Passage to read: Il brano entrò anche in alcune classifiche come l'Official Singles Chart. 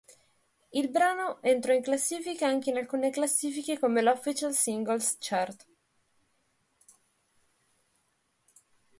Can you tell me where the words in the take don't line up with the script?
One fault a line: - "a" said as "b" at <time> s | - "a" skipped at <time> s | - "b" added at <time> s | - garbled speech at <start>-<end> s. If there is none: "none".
- "in classifica" added at 1.7 s